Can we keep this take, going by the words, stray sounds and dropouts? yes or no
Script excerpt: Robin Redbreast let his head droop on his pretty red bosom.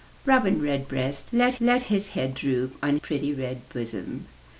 no